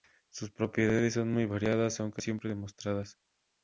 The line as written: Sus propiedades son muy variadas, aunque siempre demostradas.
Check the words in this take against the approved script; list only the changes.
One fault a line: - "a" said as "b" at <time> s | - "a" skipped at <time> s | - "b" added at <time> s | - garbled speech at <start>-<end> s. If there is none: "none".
none